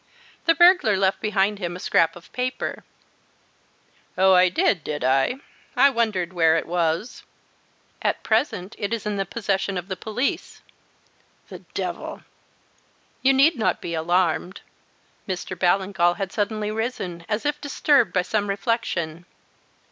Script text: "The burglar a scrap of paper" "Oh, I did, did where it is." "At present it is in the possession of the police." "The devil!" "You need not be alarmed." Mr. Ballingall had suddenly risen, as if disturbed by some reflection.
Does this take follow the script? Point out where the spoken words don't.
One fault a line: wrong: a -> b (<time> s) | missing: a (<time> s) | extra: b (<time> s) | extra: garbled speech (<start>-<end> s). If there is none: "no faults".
extra: left behind him (1.0 s)
extra: I I wondered (5.0 s)
wrong: is -> was (6.7 s)